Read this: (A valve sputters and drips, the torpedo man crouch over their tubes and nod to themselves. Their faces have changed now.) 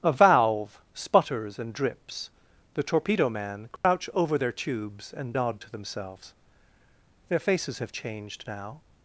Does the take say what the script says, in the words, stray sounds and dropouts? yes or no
no